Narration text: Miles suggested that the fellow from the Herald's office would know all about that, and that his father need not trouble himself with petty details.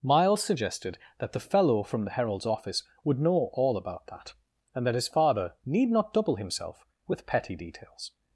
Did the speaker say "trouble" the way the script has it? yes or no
no